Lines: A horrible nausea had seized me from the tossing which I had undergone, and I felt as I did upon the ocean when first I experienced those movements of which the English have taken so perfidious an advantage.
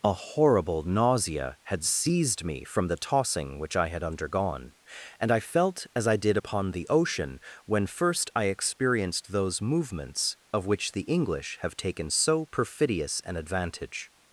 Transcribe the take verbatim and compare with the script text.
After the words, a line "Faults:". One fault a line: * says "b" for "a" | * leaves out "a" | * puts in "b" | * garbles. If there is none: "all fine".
A horrible nausea had seized me from the tossing which I had undergone, and I felt as I did upon the ocean when first I experienced those movements of which the English have taken so perfidious an advantage.
Faults:
all fine